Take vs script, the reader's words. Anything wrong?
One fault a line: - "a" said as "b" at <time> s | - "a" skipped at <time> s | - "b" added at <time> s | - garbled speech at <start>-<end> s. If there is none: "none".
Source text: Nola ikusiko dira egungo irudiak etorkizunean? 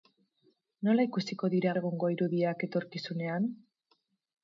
none